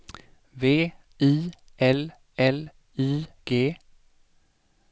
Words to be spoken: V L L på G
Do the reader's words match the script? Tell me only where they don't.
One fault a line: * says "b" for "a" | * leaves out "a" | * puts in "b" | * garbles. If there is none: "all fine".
* puts in "I"
* says "I" for "på"